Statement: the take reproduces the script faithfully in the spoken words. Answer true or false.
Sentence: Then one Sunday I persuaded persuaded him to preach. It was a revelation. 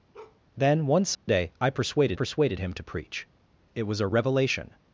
true